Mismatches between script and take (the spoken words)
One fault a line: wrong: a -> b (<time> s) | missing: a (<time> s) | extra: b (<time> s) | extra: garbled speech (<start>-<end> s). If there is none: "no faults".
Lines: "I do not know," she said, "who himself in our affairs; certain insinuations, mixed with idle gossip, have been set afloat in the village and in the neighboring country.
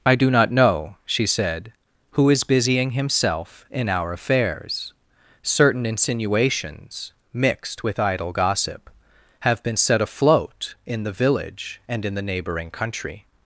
extra: is busying (2.3 s)